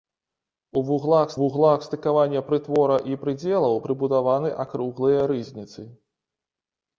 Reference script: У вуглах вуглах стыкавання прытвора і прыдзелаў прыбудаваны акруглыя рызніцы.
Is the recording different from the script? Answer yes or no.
no